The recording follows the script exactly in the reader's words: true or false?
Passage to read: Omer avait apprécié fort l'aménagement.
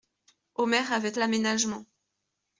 false